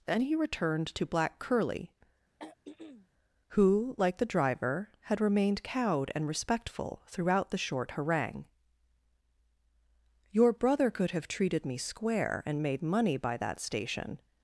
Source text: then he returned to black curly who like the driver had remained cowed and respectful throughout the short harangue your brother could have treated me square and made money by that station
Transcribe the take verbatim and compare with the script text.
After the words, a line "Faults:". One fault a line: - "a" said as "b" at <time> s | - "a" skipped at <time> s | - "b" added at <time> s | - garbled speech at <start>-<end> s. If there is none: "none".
then he returned to black curly who like the driver had remained cowed and respectful throughout the short harangue your brother could have treated me square and made money by that station
Faults:
none